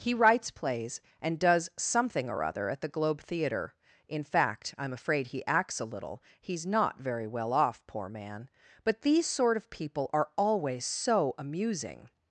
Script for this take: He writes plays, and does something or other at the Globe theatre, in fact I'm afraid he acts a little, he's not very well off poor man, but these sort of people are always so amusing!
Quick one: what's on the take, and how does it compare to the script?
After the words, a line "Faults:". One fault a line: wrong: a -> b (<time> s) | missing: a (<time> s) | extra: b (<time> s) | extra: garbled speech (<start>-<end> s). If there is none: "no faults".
He writes plays, and does something or other at the Globe theatre, in fact I'm afraid he acts a little, he's not very well off poor man, but these sort of people are always so amusing!
Faults:
no faults